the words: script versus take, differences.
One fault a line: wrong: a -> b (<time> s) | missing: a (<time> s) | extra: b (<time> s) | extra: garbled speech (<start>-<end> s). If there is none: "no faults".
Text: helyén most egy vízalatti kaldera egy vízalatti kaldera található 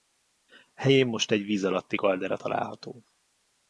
missing: egy vízalatti kaldera (2.4 s)